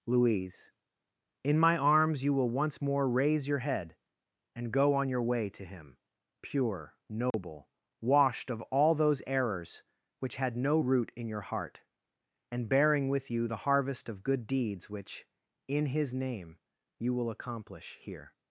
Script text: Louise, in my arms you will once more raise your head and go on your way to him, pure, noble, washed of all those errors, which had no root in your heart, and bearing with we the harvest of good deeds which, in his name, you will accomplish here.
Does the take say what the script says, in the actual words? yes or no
no